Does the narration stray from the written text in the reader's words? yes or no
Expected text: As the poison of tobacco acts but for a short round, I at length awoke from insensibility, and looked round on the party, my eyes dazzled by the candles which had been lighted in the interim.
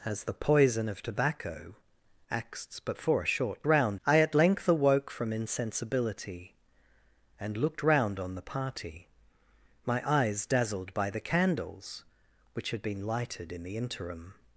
no